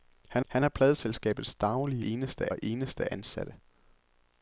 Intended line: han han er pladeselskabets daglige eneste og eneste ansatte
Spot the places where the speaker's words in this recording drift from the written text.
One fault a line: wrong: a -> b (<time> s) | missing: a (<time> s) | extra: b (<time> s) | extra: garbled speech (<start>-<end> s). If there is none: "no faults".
no faults